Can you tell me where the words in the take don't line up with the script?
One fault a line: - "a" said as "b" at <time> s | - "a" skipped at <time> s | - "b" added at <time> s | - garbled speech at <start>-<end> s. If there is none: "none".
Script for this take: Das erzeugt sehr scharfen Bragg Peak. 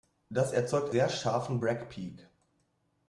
none